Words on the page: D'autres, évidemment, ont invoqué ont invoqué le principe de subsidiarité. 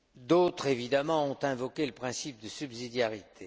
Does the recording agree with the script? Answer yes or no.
no